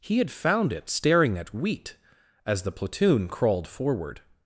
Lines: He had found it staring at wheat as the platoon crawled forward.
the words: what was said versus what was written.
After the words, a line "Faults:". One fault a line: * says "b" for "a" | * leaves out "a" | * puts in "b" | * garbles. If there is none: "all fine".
He had found it staring at wheat as the platoon crawled forward.
Faults:
all fine